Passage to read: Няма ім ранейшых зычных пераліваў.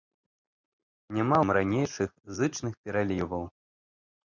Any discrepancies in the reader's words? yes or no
no